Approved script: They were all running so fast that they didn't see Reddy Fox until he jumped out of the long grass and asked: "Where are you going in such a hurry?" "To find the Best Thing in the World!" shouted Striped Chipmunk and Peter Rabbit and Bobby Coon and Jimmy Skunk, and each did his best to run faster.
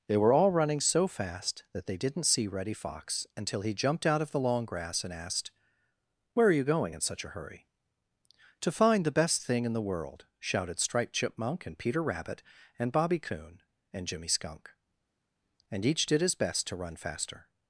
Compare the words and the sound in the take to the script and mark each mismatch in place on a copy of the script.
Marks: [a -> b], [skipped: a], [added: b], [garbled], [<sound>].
They were all running so fast that they didn't see Reddy Fox until he jumped out of the long grass and asked: "Where are you going in such a hurry?" "To find the Best Thing in the World!" shouted Striped Chipmunk and Peter Rabbit and Bobby Coon and Jimmy Skunk, and each did his best to run faster.